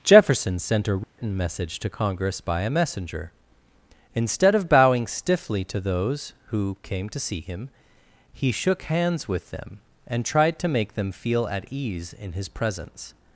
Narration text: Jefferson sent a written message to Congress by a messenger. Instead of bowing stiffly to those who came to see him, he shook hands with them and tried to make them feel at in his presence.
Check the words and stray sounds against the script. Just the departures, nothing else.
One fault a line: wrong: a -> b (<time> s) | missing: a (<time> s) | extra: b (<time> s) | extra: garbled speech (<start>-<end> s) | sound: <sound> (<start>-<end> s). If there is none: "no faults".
sound: dropout (1.0-1.2 s)
extra: ease (11.7 s)